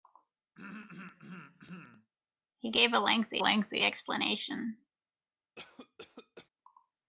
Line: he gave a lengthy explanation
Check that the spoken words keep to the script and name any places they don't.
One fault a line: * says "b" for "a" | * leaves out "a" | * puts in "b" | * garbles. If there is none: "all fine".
* puts in "lengthy"